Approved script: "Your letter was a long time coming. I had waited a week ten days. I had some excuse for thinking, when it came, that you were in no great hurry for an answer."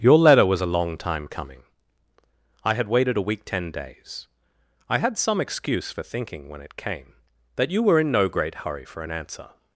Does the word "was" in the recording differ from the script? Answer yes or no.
no